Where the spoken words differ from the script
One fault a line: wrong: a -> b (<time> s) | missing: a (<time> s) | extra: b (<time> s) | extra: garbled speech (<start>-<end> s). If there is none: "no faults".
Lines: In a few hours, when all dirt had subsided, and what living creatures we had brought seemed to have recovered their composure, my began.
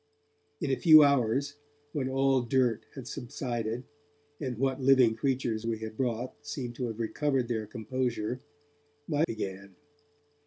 no faults